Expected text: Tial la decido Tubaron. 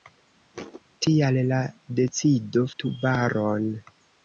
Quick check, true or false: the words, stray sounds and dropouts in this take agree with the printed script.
false